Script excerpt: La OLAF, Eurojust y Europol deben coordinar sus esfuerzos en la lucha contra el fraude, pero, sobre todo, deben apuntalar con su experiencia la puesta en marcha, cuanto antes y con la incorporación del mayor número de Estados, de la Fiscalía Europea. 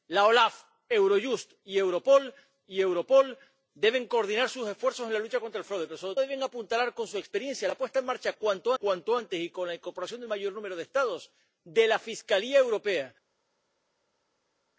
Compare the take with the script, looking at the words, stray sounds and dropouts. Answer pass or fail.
fail